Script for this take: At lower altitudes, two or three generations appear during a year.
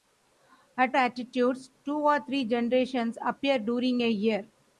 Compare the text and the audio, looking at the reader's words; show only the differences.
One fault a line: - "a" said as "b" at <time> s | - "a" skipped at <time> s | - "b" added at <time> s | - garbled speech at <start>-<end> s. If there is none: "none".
- "lower" skipped at 1.0 s